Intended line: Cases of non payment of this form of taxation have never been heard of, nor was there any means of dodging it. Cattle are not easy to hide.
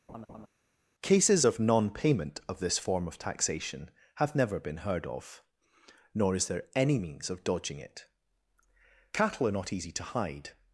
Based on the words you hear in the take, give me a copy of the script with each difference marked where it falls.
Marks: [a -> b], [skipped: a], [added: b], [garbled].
Cases of non payment of this form of taxation have never been heard of, nor [was -> is] there any means of dodging it. Cattle are not easy to hide.